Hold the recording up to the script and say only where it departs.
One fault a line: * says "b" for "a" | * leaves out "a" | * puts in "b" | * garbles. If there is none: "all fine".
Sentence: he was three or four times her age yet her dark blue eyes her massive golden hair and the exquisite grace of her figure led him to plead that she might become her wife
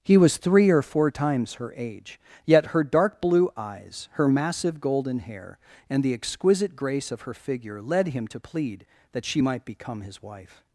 * says "his" for "her"